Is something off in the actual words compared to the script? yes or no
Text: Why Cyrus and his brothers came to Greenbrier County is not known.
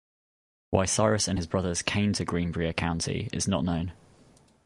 no